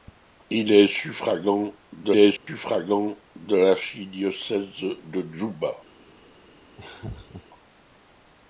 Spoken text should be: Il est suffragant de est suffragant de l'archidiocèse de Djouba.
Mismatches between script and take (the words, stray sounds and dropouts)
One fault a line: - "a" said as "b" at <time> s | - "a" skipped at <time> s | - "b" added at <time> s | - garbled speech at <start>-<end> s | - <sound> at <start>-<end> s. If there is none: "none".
- dropout at 2.4-2.5 s
- laugh at 6.8-7.4 s